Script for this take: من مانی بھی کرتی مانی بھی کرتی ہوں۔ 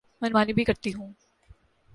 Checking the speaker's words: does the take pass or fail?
fail